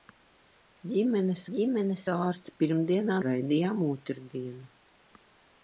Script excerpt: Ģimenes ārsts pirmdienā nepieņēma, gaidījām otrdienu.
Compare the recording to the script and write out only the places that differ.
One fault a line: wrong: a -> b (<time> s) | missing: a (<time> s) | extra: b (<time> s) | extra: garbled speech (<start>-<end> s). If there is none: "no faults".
extra: ģimenes (1.6 s)
missing: nepieņēma (3.2 s)